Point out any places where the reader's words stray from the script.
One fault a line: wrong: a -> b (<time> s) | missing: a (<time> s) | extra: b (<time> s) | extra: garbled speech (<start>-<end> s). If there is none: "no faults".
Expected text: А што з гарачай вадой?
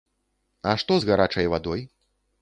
no faults